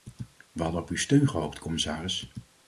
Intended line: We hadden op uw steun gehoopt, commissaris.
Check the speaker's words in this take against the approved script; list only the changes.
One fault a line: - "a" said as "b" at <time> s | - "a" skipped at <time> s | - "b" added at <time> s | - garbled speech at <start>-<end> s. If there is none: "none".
none